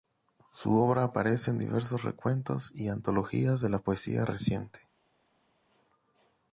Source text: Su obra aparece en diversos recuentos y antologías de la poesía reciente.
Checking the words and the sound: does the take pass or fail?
pass